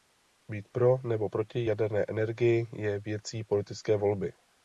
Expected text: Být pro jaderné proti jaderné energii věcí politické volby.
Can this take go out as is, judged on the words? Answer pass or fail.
fail